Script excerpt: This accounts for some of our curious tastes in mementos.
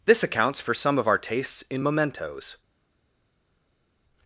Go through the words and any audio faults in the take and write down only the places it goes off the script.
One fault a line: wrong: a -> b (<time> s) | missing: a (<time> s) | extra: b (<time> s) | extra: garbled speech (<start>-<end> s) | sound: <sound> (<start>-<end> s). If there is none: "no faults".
missing: curious (1.2 s)